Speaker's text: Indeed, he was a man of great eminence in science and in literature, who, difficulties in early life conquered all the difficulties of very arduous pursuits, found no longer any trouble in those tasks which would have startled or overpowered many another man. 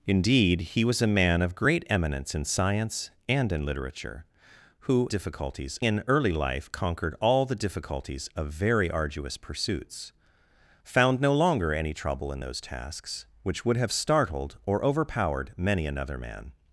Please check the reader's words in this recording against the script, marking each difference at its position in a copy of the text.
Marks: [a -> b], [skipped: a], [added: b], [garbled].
Indeed, he was a man of great eminence in science and in literature, who, difficulties in early life conquered all the difficulties of very arduous pursuits, found no longer any trouble in those tasks which would have startled or overpowered many another man.